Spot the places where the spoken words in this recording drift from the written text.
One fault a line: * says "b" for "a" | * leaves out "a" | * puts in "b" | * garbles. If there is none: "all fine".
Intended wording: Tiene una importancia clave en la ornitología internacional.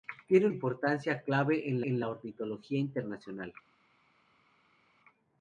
* leaves out "una"
* puts in "en"